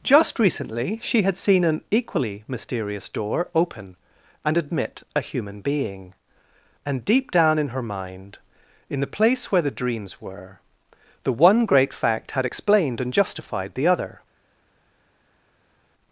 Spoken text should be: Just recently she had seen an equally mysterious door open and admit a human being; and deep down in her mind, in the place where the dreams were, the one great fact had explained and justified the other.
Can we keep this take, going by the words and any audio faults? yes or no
yes